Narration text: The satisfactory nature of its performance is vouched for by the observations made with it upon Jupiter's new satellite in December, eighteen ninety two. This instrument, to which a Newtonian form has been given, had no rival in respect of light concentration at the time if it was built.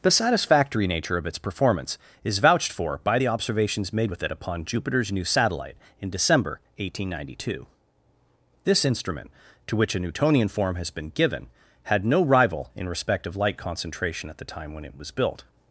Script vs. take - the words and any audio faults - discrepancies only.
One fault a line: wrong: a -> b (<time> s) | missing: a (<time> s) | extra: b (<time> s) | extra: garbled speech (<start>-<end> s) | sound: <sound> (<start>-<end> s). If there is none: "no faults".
wrong: if -> when (14.7 s)